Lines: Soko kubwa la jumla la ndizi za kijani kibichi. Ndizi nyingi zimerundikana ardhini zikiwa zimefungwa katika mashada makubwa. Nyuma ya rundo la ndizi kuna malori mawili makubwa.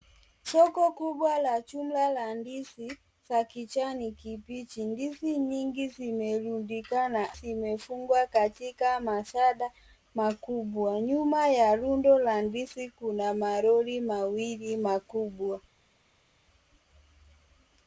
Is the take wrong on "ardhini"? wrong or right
wrong